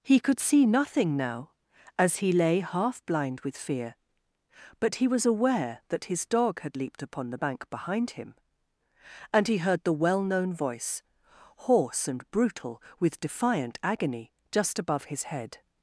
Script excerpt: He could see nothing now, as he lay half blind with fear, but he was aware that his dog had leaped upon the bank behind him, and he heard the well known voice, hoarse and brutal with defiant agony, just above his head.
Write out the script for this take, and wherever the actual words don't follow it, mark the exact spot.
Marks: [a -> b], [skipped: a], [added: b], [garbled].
He could see nothing now, as he lay half blind with fear, but he was aware that his dog had leaped upon the bank behind him, and he heard the well known voice, hoarse and brutal with defiant agony, just above his head.